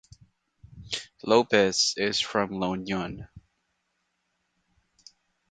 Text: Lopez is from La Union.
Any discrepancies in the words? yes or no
no